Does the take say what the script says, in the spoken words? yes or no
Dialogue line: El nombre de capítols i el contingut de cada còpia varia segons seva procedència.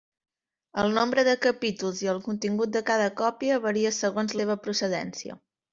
yes